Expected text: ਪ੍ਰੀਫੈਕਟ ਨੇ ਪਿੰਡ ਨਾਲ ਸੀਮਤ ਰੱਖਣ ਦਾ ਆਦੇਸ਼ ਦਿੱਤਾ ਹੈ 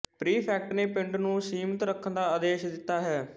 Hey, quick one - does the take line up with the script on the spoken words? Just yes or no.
no